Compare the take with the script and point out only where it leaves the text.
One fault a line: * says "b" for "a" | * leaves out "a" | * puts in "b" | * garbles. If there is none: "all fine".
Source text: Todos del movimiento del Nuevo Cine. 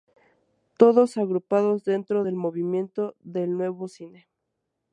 * puts in "agrupados dentro"